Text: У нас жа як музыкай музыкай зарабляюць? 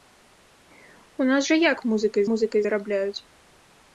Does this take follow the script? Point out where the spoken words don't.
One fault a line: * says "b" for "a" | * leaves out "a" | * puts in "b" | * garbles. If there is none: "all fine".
all fine